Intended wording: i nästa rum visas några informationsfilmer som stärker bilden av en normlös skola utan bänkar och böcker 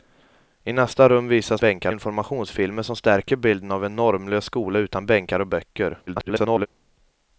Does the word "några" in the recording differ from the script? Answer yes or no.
yes